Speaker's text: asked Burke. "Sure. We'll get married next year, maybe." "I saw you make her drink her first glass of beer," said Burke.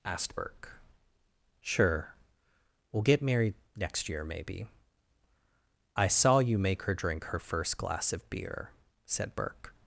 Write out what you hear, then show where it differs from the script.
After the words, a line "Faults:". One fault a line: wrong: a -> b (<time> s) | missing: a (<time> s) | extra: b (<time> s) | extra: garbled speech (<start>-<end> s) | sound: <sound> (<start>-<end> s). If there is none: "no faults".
asked Burke. "Sure. We'll get married next year, maybe." "I saw you make her drink her first glass of beer," said Burke.
Faults:
no faults